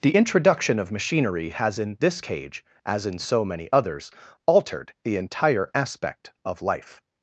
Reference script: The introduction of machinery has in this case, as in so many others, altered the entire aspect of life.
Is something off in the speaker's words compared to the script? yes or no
yes